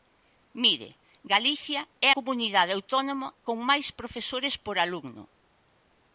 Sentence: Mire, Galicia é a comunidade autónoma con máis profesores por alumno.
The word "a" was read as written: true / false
false